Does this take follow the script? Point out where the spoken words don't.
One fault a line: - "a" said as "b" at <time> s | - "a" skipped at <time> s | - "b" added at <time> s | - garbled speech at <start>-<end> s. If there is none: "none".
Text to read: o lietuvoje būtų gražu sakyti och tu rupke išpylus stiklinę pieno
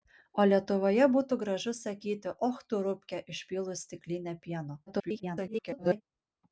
- garbled speech at 4.9-6.0 s